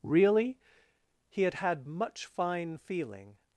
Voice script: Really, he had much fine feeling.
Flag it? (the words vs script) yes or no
yes